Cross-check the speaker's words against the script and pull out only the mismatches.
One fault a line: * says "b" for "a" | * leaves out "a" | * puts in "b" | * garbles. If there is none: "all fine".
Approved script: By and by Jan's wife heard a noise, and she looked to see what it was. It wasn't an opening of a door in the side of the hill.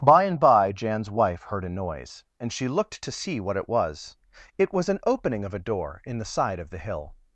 * says "was" for "wasn't"